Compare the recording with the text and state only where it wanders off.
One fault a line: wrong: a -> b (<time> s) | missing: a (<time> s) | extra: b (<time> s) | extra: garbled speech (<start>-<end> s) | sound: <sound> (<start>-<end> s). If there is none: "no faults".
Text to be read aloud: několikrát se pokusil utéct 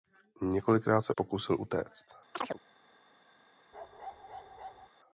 sound: chirp (2.3-2.6 s)
sound: bark (3.7-4.9 s)